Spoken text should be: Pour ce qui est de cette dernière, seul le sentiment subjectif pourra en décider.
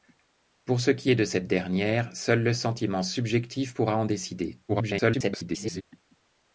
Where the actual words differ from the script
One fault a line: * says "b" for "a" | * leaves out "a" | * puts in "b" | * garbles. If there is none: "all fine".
* garbles